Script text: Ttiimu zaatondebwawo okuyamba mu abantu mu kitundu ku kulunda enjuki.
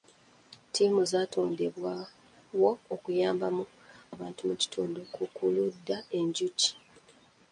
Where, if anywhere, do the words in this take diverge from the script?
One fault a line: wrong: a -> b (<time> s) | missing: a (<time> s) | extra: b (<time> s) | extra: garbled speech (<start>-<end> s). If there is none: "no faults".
no faults